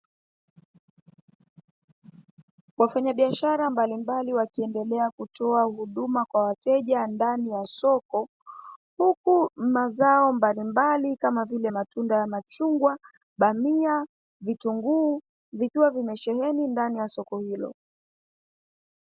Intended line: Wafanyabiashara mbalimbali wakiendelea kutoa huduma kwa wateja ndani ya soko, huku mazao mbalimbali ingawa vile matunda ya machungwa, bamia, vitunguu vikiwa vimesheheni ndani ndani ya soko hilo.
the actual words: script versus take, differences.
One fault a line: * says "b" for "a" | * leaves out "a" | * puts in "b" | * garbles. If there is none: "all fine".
* says "kama" for "ingawa"
* leaves out "ndani"